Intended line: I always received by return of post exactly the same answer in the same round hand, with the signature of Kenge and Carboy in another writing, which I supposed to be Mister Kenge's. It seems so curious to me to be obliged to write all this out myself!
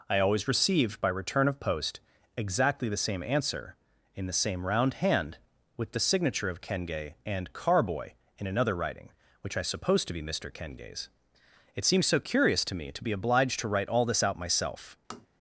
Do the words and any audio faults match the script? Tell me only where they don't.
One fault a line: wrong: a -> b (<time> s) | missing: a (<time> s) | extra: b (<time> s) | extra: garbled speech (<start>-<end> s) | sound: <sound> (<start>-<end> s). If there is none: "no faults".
sound: tap (15.1-15.3 s)